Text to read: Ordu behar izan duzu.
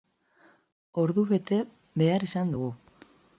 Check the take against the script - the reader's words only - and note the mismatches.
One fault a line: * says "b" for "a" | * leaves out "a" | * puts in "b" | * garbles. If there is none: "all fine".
* puts in "bete"
* says "dugu" for "duzu"